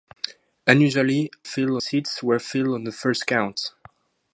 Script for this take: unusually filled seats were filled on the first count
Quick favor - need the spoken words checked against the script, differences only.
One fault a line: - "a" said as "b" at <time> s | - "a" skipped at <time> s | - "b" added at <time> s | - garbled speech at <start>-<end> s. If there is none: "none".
none